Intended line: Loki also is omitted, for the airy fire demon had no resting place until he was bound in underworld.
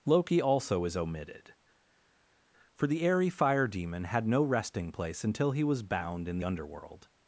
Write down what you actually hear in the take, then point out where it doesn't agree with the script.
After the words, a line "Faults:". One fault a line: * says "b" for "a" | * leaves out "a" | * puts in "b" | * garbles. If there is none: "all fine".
Loki also is omitted, for the airy fire demon had no resting place until he was bound in underworld.
Faults:
all fine